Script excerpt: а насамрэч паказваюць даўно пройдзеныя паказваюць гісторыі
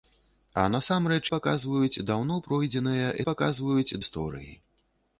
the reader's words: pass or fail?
pass